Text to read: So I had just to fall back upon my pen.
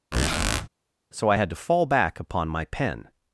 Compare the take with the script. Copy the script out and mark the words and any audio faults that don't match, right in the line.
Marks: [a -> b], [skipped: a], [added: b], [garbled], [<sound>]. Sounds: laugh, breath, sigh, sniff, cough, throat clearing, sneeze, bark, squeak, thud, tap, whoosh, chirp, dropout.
[squeak] So I had [skipped: just] to fall back upon my pen.